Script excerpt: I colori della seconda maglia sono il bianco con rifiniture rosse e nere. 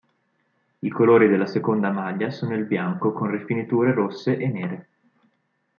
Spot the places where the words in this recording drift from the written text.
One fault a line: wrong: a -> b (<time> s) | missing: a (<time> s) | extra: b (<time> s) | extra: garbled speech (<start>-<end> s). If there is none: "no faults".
no faults